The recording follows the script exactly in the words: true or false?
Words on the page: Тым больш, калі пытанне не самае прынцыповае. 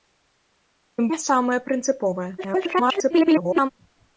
false